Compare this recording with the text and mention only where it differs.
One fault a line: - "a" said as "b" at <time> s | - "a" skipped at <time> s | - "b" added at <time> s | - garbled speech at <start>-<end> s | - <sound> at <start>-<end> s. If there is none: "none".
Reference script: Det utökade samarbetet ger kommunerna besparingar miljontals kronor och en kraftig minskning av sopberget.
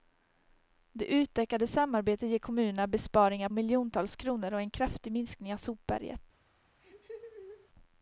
- laugh at 6.8-7.7 s